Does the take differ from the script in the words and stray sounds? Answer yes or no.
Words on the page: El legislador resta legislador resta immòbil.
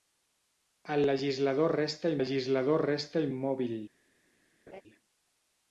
yes